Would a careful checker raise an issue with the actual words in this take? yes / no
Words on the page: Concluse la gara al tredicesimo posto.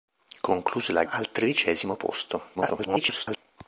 yes